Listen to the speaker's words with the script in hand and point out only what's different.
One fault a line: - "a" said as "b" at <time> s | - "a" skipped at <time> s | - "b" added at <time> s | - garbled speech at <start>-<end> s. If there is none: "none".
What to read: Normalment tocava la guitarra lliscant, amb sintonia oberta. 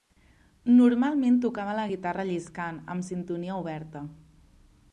none